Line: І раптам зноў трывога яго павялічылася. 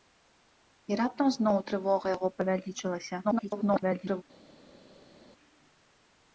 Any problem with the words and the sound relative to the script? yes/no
yes